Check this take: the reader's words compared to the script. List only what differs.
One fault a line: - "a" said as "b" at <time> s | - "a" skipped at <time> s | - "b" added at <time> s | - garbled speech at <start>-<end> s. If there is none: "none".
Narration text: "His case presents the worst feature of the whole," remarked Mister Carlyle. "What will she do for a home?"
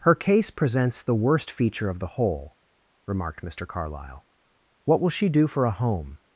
- "His" said as "Her" at 0.0 s